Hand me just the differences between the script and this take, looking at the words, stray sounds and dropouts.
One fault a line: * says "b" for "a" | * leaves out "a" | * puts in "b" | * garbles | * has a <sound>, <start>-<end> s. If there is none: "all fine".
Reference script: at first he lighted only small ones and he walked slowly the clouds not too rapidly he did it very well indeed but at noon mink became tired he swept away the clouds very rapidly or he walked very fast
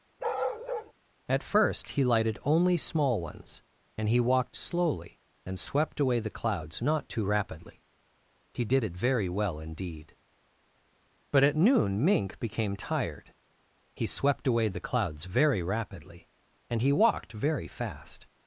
* has a bark, 0.2-0.9 s
* puts in "and swept away"
* says "and" for "or"